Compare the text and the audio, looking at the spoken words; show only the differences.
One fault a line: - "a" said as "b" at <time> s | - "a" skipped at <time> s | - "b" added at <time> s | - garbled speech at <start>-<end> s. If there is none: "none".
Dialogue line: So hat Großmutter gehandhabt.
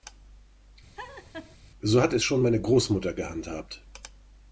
- "es schon meine" added at 2.1 s